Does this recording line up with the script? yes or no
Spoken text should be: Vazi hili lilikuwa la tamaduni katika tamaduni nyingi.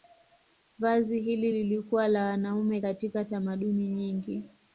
no